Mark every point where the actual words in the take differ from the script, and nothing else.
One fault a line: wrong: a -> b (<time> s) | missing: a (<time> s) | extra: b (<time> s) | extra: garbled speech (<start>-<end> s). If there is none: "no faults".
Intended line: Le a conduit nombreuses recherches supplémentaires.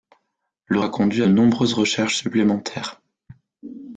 no faults